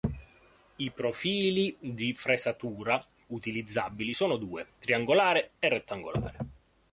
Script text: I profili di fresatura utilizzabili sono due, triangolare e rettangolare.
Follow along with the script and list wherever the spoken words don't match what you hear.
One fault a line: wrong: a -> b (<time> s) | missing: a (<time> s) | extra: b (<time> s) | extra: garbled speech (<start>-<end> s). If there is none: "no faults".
no faults